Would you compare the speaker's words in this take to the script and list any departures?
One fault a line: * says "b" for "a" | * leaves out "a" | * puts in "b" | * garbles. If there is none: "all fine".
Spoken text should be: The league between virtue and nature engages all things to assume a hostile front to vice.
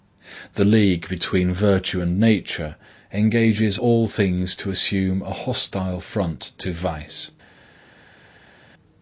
all fine